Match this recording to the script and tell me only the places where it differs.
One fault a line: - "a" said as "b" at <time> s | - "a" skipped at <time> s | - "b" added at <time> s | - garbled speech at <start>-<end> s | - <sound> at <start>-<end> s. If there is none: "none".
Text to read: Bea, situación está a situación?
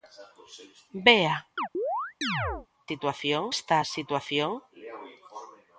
- chirp at 1.6-2.7 s